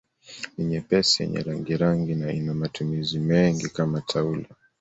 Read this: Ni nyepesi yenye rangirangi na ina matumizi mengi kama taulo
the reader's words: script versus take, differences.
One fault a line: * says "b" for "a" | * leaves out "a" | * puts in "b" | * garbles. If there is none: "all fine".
all fine